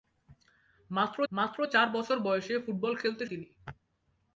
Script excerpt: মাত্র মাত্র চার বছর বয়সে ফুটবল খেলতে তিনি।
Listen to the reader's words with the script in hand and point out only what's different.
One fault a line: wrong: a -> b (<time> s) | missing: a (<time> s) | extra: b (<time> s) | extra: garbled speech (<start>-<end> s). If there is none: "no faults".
no faults